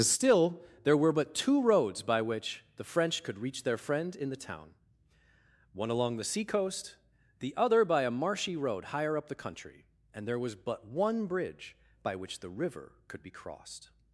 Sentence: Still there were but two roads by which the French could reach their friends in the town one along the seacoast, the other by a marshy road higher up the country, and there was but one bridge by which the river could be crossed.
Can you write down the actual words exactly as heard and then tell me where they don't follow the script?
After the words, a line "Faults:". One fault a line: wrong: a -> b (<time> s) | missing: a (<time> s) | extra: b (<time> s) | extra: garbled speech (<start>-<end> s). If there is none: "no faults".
Still there were but two roads by which the French could reach their friend in the town one along the seacoast, the other by a marshy road higher up the country, and there was but one bridge by which the river could be crossed.
Faults:
wrong: friends -> friend (3.8 s)